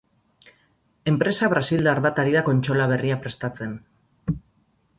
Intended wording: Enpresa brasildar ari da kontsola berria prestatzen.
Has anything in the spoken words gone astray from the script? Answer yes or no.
yes